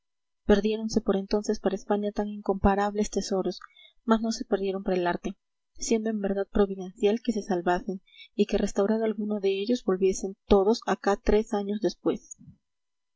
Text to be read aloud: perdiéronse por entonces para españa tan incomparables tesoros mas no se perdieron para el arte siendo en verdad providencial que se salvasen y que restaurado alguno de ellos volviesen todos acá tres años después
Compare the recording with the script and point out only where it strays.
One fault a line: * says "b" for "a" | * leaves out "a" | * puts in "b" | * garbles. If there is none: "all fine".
all fine